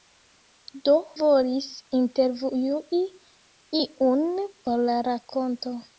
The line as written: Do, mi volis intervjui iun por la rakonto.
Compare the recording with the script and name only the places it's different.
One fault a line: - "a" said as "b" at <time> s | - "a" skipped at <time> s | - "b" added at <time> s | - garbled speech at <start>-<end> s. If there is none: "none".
- "mi" skipped at 0.9 s